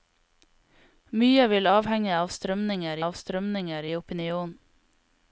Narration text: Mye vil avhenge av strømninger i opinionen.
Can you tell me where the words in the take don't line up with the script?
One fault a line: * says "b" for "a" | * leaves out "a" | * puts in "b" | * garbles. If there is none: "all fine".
* puts in "av strømninger"